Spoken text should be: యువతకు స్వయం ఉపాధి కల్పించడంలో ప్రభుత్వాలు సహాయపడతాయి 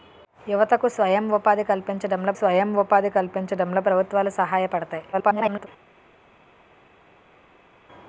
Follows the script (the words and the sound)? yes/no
no